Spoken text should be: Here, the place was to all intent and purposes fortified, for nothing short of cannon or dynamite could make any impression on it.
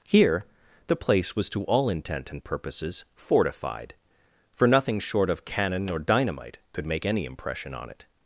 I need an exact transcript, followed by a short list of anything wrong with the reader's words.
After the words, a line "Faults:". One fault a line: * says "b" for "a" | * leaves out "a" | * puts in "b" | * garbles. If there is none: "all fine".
Here, the place was to all intent and purposes fortified, for nothing short of cannon or dynamite could make any impression on it.
Faults:
all fine